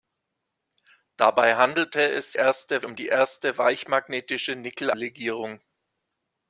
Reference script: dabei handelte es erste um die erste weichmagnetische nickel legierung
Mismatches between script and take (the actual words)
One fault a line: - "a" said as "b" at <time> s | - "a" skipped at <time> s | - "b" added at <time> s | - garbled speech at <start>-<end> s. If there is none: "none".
none